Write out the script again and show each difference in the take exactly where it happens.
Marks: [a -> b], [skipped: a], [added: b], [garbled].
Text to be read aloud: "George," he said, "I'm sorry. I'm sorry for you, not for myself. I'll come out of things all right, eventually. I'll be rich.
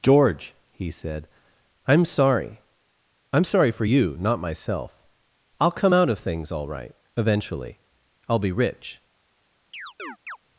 "George," he said, "I'm sorry. I'm sorry for you, not [skipped: for] myself. I'll come out of things all right, eventually. I'll be rich.